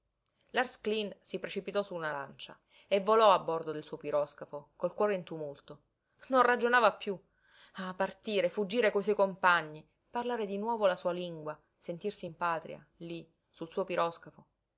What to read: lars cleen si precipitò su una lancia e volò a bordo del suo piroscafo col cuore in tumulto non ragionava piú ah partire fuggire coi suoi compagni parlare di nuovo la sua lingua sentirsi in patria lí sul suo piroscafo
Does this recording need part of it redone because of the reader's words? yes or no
no